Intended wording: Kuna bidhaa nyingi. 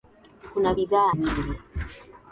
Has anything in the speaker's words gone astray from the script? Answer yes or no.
no